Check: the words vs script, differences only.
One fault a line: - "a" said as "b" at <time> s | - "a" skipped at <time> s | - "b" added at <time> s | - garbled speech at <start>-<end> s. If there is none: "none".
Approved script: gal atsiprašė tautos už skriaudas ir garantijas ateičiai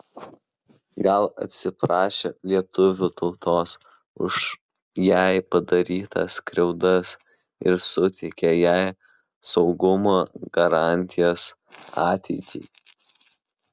- "lietuvių" added at 2.5 s
- "jai padarytas" added at 5.1 s
- "suteikė jai saugumo" added at 7.9 s